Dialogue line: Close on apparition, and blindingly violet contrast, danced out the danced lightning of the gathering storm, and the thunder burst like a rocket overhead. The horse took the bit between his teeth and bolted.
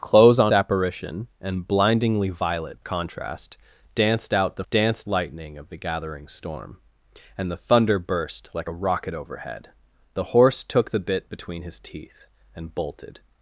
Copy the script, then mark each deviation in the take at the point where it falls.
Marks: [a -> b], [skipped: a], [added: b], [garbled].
Close on apparition, and blindingly violet contrast, danced out the danced lightning of the gathering storm, and the thunder burst like a rocket overhead. The horse took the bit between his teeth and bolted.